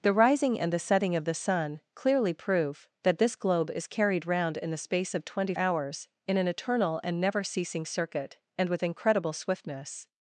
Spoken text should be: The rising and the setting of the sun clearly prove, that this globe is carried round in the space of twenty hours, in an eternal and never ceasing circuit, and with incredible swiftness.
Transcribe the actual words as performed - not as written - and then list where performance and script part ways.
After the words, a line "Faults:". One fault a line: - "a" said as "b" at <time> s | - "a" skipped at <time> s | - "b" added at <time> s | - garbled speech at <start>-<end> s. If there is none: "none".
The rising and the setting of the sun clearly prove, that this globe is carried round in the space of twenty hours, in an eternal and never ceasing circuit, and with incredible swiftness.
Faults:
none